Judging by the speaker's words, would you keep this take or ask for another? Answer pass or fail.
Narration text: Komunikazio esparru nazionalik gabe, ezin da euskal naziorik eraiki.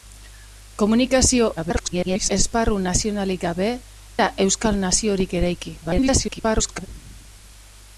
fail